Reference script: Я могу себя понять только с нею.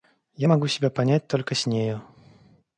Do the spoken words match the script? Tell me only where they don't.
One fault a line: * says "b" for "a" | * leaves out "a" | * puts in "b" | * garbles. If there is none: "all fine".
all fine